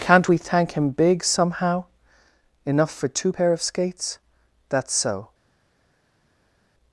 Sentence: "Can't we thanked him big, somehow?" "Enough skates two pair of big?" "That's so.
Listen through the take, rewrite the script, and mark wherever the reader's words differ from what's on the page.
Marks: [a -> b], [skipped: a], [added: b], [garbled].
"Can't we [thanked -> thank] him big, somehow?" "Enough [skates -> for] two pair of [big?" -> skates] "That's so.